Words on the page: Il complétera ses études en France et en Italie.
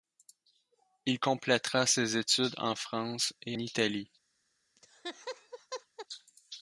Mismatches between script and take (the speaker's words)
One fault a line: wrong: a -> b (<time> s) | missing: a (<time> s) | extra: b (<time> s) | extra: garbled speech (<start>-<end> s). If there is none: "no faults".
missing: en (3.6 s)